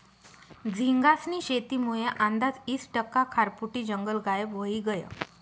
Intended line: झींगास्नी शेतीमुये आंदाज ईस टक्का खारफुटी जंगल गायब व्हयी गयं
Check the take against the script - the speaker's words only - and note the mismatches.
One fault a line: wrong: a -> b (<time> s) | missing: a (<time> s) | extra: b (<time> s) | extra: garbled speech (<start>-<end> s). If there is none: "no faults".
no faults